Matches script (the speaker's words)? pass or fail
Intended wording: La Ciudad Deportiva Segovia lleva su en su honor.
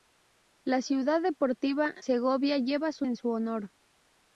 pass